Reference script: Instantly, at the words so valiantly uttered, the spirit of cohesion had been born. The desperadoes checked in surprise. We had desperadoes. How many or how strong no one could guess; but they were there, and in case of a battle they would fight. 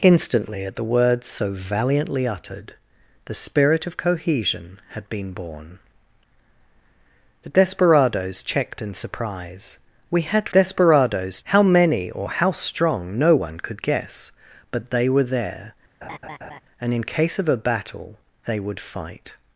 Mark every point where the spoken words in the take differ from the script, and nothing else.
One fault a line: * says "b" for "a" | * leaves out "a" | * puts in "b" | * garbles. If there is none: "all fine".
all fine